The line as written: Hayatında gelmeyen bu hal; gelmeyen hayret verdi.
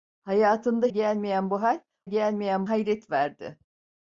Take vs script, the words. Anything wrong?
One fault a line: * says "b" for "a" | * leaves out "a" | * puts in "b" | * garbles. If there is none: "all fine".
all fine